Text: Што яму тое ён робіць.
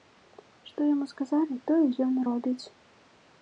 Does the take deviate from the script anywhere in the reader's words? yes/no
yes